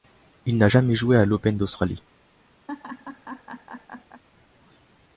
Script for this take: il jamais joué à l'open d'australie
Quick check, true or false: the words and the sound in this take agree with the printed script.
false